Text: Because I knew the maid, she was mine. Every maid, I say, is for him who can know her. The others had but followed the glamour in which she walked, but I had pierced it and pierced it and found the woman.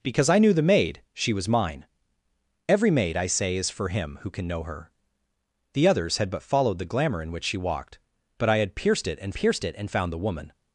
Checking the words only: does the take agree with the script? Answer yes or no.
yes